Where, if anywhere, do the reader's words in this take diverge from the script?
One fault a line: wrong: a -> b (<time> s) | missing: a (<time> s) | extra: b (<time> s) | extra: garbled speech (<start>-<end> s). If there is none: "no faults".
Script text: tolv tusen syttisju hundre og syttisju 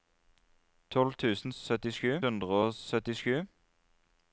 no faults